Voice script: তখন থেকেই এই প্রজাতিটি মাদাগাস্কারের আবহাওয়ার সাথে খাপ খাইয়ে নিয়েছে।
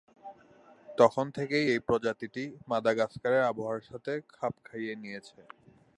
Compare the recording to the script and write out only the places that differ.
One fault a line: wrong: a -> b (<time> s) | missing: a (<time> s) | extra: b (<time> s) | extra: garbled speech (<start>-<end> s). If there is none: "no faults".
no faults